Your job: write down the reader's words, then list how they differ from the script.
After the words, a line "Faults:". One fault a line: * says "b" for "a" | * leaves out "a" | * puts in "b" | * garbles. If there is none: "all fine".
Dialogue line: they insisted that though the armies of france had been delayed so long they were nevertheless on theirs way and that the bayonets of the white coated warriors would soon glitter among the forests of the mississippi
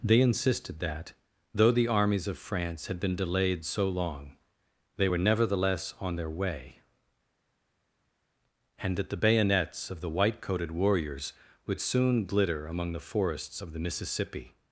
they insisted that though the armies of france had been delayed so long they were nevertheless on their way and that the bayonets of the white coated warriors would soon glitter among the forests of the mississippi
Faults:
* says "their" for "theirs"